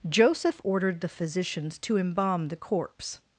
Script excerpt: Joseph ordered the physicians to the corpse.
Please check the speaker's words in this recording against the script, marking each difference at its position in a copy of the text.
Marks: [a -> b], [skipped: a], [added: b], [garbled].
Joseph ordered the physicians to [added: embalm] the corpse.